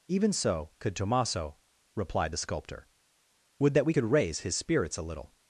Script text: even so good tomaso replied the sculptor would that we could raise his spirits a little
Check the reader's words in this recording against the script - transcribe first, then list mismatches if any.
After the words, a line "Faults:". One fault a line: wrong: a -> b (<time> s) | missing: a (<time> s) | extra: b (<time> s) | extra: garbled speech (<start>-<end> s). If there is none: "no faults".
even so could tomaso replied the sculptor would that we could raise his spirits a little
Faults:
wrong: good -> could (0.8 s)